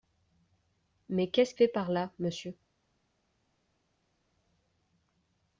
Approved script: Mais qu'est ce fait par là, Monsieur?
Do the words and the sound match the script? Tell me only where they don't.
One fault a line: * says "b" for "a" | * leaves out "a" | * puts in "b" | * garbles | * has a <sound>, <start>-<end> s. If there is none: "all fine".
all fine